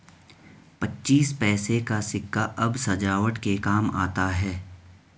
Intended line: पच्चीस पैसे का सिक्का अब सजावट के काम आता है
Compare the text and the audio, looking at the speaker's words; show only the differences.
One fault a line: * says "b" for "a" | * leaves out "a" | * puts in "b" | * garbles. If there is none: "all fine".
all fine